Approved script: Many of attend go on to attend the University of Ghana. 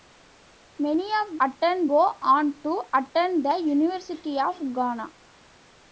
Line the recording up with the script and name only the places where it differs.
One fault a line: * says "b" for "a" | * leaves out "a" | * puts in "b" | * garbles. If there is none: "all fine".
all fine